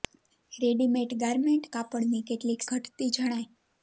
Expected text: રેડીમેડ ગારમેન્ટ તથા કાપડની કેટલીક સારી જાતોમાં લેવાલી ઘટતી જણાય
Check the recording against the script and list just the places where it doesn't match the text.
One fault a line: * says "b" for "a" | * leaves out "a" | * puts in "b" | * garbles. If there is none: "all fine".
* leaves out "તથા"
* leaves out "સારી જાતોમાં લેવાલી"